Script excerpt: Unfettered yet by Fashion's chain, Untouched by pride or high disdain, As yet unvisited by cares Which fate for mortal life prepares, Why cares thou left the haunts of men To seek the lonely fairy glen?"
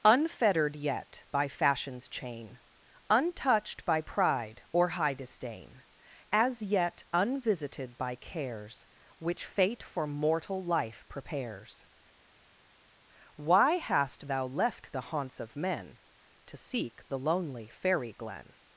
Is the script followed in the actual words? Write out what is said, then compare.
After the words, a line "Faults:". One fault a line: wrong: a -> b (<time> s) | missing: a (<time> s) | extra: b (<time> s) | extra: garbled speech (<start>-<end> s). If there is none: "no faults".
Unfettered yet by Fashion's chain, Untouched by pride or high disdain, As yet unvisited by cares Which fate for mortal life prepares, Why hast thou left the haunts of men To seek the lonely fairy glen?"
Faults:
wrong: cares -> hast (13.7 s)